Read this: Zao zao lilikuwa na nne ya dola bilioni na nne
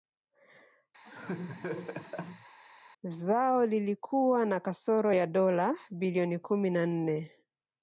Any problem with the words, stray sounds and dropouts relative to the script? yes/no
yes